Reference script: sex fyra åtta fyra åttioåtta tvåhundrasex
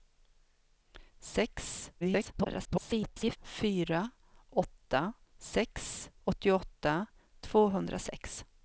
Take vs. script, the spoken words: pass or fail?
fail